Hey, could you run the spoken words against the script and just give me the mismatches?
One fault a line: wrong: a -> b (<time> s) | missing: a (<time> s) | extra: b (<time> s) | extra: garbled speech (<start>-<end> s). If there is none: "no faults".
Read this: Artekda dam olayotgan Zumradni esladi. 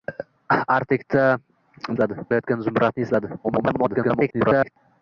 wrong: dam -> esladi (2.0 s)
extra: garbled speech (3.4-4.8 s)